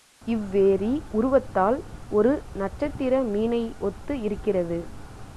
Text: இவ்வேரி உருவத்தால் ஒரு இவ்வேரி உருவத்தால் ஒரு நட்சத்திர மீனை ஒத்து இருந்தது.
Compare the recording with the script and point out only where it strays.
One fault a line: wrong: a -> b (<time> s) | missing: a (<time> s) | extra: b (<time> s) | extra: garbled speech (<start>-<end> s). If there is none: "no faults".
missing: இவ்வேரி உருவத்தால் ஒரு (2.3 s)
wrong: இருந்தது -> இருக்கிறது (4.2 s)